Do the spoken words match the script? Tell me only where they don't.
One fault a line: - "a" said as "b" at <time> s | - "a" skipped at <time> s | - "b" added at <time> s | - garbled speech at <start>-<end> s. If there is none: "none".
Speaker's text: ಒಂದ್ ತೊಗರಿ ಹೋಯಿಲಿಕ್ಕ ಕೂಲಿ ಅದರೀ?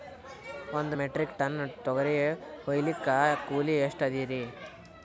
- "ಮೆಟ್ರಿಕ್ ಟನ್" added at 0.9 s
- "ಎಷ್ಟ" added at 3.9 s